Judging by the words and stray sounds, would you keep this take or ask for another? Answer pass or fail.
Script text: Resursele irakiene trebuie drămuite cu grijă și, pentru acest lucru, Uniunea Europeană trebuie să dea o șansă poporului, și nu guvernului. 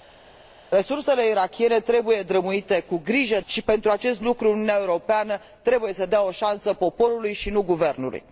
pass